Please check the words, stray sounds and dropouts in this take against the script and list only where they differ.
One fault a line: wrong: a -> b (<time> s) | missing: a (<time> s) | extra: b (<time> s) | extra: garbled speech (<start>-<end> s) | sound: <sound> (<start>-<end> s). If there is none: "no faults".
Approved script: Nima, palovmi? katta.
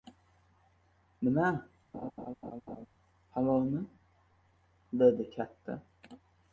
sound: laugh (1.9-2.9 s)
extra: dedi (5.0 s)